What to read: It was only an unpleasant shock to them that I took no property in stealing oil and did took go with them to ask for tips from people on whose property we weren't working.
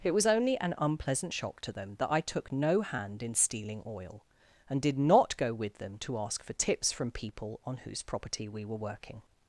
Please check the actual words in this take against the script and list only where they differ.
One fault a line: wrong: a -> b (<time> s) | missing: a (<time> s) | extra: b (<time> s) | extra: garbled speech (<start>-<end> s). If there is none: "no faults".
wrong: property -> hand (2.8 s)
wrong: took -> not (5.0 s)
wrong: weren't -> were (8.6 s)